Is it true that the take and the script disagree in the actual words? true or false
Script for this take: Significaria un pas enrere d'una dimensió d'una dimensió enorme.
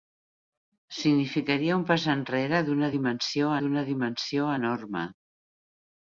false